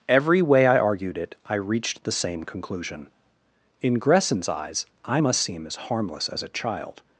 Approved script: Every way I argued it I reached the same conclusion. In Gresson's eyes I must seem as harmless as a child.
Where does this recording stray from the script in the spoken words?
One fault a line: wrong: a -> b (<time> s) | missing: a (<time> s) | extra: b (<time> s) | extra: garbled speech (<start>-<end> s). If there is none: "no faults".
no faults